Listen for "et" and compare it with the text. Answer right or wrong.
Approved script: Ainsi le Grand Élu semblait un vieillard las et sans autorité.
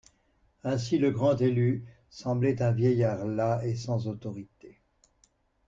right